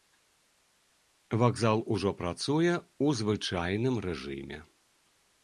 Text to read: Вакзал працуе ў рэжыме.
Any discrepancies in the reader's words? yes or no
yes